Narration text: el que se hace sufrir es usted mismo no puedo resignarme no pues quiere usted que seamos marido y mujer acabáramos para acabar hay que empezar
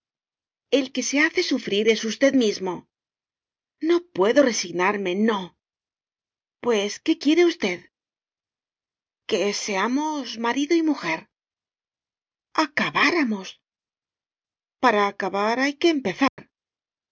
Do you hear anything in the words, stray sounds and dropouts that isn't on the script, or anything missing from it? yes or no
yes